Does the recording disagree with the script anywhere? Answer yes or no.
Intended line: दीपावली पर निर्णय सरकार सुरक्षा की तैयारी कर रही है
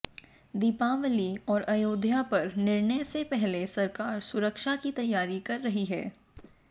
yes